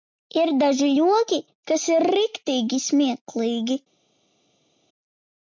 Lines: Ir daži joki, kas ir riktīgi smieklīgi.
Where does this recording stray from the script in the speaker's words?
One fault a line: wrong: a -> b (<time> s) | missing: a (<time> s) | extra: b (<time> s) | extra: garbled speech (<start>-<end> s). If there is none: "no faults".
no faults